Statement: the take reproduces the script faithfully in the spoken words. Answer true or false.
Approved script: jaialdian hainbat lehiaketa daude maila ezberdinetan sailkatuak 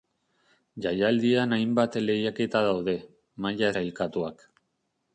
false